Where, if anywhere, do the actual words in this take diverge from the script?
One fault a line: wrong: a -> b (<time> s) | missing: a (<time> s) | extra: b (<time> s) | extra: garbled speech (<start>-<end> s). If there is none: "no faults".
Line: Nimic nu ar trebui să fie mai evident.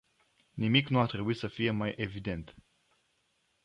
no faults